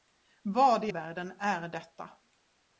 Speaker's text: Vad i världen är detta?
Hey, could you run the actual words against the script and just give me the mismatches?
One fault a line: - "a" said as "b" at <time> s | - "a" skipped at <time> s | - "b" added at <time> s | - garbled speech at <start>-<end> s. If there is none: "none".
none